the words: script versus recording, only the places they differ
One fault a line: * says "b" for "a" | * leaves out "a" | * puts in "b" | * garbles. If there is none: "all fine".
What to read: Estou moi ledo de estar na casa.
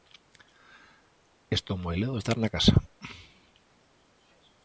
all fine